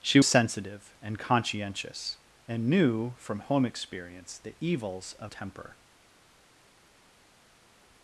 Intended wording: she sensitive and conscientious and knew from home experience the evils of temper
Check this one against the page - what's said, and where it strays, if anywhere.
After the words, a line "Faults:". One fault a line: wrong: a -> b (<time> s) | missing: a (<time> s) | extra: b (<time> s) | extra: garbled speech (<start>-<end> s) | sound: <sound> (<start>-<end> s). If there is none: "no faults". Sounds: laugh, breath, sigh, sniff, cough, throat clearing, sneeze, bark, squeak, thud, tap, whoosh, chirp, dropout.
she sensitive and conscientious and knew from home experience the evils of temper
Faults:
no faults